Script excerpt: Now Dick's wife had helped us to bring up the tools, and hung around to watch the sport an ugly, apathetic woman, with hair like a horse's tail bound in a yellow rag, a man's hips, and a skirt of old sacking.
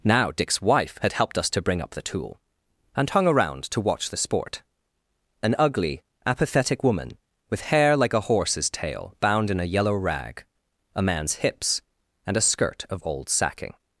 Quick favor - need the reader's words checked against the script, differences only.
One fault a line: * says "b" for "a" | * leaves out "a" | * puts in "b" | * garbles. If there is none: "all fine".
* says "tool" for "tools"